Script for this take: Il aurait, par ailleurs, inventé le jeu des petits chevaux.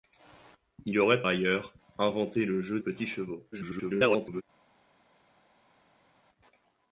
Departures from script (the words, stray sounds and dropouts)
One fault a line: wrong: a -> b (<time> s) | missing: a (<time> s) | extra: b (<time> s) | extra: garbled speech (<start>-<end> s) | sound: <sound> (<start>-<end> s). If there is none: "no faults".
missing: par (1.2 s)
missing: des (2.8 s)
extra: garbled speech (3.5-4.4 s)